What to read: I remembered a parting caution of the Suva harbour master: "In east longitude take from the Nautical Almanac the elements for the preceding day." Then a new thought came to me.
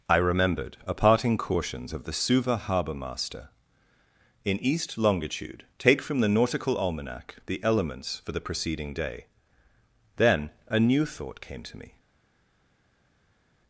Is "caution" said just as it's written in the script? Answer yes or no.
no